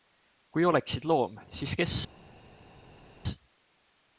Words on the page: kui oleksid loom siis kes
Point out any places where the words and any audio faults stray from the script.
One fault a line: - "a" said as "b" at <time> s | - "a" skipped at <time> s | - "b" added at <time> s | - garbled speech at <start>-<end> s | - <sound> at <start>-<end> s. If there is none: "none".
none